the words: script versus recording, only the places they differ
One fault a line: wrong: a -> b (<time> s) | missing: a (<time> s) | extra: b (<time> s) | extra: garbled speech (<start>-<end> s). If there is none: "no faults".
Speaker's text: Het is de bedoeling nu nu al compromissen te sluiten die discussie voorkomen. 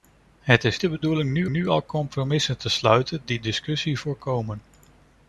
no faults